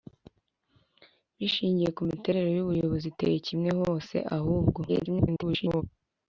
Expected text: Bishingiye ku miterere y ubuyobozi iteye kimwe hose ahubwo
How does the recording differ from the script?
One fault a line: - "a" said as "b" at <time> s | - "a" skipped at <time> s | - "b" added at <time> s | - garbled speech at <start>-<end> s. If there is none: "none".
- garbled speech at 4.9-5.8 s